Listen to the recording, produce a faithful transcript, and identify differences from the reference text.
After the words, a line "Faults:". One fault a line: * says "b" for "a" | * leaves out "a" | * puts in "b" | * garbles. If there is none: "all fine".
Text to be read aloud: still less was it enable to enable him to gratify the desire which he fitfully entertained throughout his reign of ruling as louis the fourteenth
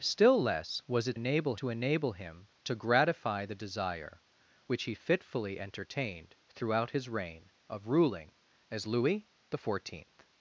still less was it enable to enable him to gratify the desire which he fitfully entertained throughout his reign of ruling as louis the fourteenth
Faults:
all fine